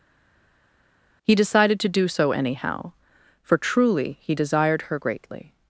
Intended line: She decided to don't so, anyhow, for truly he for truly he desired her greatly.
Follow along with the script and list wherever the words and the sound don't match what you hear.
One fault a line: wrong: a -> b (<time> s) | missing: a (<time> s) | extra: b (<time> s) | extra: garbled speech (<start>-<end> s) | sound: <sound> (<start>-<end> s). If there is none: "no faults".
wrong: She -> He (1.2 s)
wrong: don't -> do (1.9 s)
missing: for truly he (4.3 s)